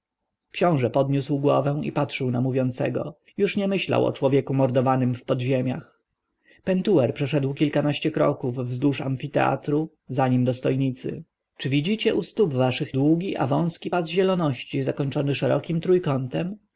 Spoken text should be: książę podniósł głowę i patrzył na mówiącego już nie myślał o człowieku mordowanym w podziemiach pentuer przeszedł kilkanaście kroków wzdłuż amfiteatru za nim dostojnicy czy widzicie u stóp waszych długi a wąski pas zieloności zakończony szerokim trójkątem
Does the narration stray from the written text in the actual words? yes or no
no